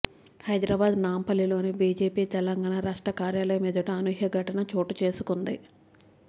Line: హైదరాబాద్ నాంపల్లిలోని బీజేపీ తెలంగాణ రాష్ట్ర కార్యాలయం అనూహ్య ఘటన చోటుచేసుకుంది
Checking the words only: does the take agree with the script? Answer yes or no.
no